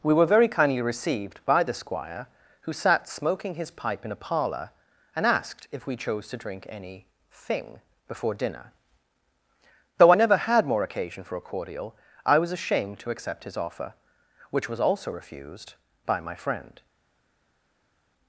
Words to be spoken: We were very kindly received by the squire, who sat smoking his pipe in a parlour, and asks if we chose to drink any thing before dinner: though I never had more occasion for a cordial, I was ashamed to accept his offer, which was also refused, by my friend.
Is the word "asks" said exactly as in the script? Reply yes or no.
no